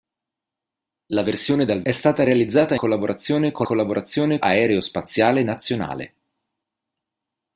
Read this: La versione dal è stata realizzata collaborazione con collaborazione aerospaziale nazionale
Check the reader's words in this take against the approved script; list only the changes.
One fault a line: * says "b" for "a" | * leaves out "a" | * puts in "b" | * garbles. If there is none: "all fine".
all fine